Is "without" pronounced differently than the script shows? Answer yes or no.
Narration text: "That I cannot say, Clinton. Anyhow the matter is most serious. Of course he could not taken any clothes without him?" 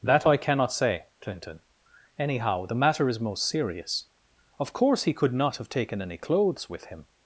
yes